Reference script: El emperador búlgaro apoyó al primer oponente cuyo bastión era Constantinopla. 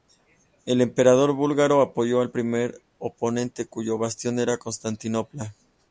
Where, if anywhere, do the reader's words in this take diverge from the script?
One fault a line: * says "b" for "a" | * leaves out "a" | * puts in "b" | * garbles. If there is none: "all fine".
all fine